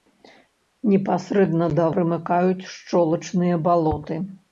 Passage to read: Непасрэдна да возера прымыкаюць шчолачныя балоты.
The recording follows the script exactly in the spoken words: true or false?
false